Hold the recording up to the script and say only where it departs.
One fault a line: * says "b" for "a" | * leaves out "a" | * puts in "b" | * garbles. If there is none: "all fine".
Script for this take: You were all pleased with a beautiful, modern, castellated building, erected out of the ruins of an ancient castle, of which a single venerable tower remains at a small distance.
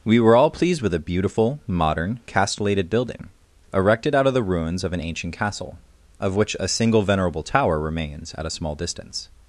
* says "We" for "You"